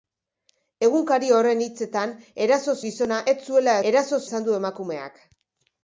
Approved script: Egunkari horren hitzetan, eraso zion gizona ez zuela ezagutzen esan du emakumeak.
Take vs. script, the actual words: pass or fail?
fail